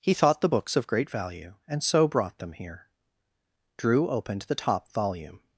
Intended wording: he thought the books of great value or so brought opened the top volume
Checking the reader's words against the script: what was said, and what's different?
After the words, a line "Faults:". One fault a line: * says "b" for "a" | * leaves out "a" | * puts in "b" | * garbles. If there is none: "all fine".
he thought the books of great value and so brought them here drew opened the top volume
Faults:
* says "and" for "or"
* puts in "them here drew"